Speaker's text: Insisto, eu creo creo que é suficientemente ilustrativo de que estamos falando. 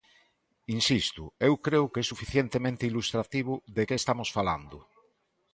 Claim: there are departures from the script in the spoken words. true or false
true